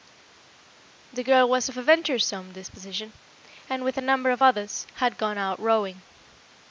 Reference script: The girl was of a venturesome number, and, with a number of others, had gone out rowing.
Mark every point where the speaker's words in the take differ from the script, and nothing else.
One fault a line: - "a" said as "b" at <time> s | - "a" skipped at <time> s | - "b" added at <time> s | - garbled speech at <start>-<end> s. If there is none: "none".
- "number" said as "disposition" at 2.5 s